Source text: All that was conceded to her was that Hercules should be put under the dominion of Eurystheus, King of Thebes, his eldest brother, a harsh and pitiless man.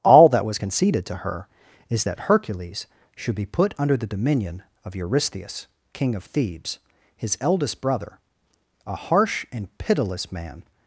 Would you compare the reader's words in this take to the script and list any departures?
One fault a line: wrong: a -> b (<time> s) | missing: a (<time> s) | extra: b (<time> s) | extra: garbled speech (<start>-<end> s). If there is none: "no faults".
wrong: was -> is (1.9 s)